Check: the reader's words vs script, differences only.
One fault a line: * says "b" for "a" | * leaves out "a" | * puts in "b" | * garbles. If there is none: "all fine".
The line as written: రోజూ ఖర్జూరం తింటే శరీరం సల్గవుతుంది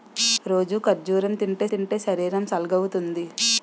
* puts in "తింటే"